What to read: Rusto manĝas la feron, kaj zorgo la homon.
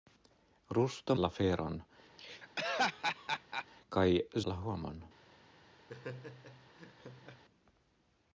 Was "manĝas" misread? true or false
true